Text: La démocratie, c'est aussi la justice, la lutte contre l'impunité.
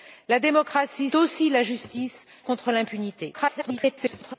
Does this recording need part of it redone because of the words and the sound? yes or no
yes